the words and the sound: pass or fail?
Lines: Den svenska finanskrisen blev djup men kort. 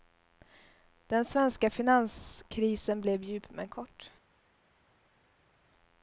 pass